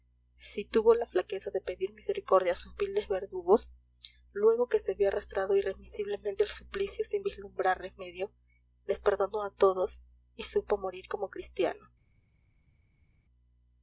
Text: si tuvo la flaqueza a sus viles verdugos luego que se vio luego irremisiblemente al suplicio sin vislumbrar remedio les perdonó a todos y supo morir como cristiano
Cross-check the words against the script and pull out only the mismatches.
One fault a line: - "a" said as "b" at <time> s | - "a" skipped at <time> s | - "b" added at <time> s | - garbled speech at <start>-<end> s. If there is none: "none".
- "de pedir misericordia" added at 1.5 s
- "luego" said as "arrastrado" at 5.1 s